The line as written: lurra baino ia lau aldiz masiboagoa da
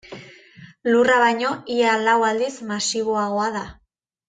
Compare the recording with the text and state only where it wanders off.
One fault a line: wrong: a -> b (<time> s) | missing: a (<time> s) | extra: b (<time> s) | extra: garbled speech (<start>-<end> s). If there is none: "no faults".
no faults